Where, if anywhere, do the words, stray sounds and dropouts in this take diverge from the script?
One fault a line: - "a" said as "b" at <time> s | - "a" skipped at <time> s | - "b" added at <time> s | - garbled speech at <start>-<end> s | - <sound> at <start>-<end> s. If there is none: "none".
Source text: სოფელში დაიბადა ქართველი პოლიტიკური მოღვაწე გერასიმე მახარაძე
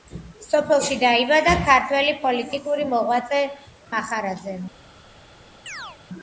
- "გერასიმე" skipped at 3.4 s
- chirp at 5.7-6.0 s